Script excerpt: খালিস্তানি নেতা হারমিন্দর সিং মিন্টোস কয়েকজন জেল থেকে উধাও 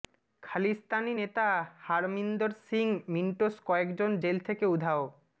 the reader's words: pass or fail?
pass